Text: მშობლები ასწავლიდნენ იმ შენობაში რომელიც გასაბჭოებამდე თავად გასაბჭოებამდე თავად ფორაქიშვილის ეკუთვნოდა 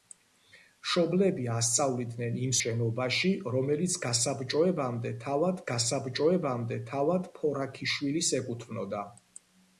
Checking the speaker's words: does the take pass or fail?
pass